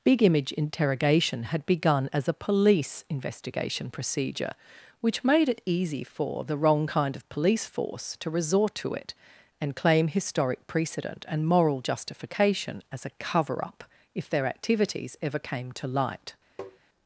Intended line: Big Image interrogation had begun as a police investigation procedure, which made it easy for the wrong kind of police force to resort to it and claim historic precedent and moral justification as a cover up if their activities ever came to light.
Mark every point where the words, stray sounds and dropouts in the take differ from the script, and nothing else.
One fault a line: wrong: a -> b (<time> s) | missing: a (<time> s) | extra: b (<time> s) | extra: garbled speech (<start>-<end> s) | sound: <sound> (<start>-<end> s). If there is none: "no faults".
sound: tap (16.6-16.8 s)